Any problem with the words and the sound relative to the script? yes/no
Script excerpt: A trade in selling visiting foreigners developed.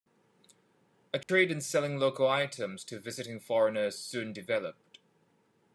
yes